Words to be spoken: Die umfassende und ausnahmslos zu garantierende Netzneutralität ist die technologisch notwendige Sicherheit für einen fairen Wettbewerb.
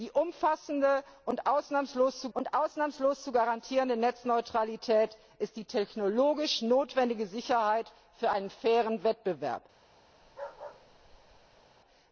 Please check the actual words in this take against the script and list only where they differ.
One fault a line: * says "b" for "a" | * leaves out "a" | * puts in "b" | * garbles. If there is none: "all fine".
* puts in "und ausnahmslos zu"